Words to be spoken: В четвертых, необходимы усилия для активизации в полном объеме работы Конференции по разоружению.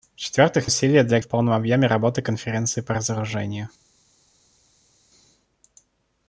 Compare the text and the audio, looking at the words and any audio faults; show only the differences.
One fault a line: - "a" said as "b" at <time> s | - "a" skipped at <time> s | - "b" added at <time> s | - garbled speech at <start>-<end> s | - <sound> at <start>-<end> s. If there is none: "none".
- "необходимы" skipped at 0.7 s
- "активизации" skipped at 1.2 s